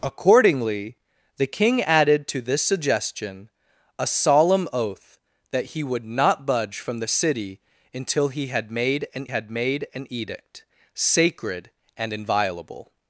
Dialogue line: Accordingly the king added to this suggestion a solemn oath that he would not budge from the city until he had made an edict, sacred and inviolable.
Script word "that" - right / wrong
right